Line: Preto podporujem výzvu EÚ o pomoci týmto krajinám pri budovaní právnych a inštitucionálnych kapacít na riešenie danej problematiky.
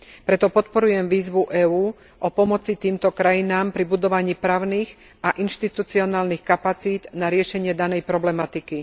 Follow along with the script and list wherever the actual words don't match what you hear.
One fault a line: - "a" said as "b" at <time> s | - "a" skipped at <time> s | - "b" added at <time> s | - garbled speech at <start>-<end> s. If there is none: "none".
none